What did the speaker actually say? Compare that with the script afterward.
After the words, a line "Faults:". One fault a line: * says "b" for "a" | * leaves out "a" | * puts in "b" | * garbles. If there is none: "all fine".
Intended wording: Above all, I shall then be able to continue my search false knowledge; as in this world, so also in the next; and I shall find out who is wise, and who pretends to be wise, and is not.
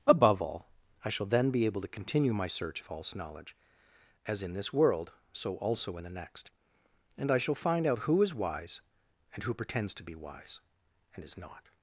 Above all, I shall then be able to continue my search false knowledge; as in this world, so also in the next; and I shall find out who is wise, and who pretends to be wise, and is not.
Faults:
all fine